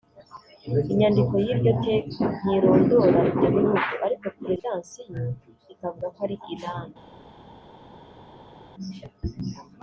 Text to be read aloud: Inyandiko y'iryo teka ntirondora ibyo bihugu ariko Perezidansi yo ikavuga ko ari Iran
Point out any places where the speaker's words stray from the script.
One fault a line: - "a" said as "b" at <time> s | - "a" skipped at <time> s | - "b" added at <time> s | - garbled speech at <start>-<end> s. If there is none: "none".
none